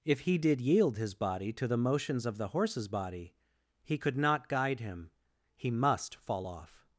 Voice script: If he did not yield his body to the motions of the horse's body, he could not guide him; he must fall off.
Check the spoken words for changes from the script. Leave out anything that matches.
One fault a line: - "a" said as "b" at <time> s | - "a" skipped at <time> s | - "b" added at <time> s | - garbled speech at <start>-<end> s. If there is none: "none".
- "not" skipped at 0.6 s